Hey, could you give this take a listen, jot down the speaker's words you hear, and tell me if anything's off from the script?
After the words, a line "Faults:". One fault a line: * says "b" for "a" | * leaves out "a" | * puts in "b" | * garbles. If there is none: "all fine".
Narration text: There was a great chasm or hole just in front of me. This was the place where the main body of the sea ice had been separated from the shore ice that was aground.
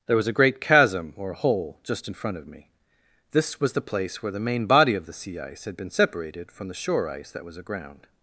There was a great chasm or hole just in front of me. This was the place where the main body of the sea ice had been separated from the shore ice that was aground.
Faults:
all fine